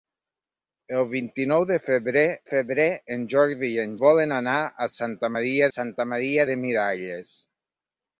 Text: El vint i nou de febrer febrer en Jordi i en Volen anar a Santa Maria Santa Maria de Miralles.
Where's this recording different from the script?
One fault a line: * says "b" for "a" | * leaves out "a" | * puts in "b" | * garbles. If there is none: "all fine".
all fine